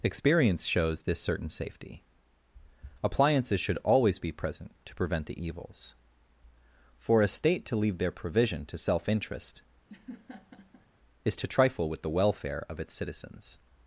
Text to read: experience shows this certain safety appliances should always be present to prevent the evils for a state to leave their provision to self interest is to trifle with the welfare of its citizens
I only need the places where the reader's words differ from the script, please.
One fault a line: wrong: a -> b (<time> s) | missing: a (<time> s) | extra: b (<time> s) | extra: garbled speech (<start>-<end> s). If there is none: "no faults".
no faults